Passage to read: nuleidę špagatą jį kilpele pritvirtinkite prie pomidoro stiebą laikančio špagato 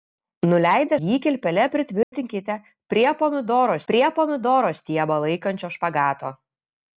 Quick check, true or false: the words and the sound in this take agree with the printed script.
false